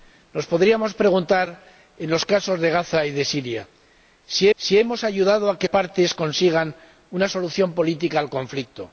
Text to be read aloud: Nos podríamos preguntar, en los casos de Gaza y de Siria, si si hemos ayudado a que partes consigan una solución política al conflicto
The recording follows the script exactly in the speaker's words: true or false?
true